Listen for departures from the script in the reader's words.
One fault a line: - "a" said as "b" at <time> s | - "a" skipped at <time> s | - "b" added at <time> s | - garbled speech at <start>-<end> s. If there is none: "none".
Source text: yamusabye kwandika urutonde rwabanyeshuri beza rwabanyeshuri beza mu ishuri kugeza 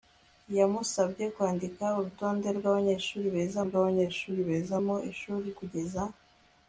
none